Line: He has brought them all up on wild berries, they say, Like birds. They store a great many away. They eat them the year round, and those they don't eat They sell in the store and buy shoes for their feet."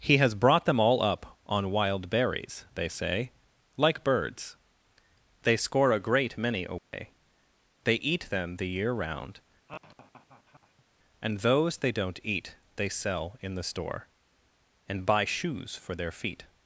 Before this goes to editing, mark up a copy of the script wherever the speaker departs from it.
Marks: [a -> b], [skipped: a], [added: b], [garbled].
He has brought them all up on wild berries, they say, Like birds. They [store -> score] a great many away. They eat them the year round, and those they don't eat They sell in the store and buy shoes for their feet."